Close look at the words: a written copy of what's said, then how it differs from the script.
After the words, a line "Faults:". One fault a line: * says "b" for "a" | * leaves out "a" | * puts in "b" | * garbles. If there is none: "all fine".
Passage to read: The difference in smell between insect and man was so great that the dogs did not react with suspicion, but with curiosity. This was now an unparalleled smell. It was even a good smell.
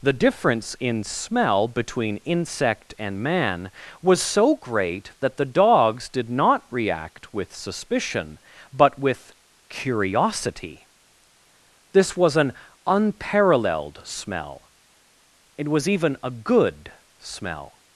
The difference in smell between insect and man was so great that the dogs did not react with suspicion, but with curiosity. This was an unparalleled smell. It was even a good smell.
Faults:
* leaves out "now"